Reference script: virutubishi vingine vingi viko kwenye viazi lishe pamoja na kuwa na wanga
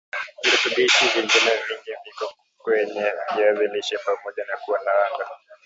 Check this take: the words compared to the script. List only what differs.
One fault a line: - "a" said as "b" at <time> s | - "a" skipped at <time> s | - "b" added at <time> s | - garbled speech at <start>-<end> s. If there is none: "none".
none